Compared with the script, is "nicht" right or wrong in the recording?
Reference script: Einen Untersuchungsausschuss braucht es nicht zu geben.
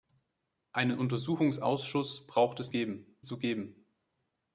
wrong